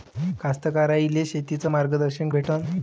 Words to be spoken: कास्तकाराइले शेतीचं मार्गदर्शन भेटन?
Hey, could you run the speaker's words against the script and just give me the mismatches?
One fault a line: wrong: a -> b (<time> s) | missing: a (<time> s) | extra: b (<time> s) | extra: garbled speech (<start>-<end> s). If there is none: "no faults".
no faults